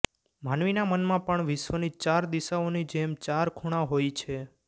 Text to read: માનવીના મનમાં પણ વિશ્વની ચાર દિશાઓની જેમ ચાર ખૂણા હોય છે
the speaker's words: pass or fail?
pass